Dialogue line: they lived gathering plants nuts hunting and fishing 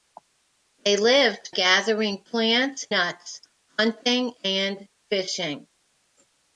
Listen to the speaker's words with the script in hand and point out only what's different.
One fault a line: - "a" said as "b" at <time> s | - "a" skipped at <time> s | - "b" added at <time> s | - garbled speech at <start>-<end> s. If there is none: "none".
none